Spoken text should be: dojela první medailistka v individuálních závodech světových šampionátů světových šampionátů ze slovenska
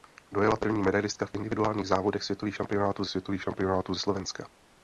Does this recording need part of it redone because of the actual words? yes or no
no